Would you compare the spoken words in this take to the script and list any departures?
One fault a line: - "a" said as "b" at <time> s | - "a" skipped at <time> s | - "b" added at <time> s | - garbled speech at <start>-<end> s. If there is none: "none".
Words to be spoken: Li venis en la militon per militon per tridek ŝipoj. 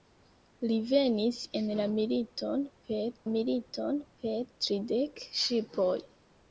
none